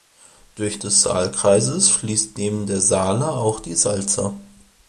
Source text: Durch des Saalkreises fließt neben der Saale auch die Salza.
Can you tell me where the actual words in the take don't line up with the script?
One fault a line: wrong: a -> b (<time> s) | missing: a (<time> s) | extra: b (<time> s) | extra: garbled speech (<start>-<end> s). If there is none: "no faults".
no faults